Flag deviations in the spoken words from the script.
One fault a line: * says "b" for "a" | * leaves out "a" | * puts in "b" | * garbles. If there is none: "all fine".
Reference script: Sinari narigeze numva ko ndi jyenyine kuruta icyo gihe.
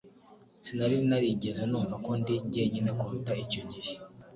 all fine